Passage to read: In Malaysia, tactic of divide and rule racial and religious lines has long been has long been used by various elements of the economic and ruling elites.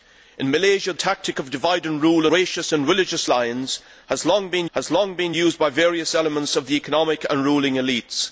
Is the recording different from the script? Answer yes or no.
no